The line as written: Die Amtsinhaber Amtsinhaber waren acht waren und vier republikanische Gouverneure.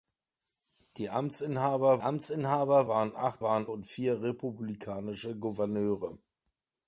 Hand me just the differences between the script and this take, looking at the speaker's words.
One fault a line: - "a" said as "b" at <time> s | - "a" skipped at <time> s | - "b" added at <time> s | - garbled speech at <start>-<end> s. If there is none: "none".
none